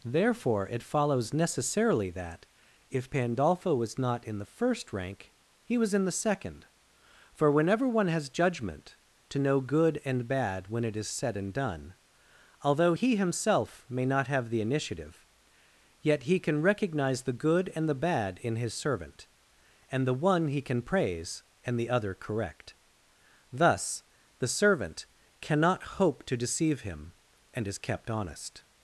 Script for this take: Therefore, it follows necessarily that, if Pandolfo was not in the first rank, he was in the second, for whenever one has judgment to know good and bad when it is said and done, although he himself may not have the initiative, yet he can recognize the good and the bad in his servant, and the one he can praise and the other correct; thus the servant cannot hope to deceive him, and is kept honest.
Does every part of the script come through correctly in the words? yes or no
yes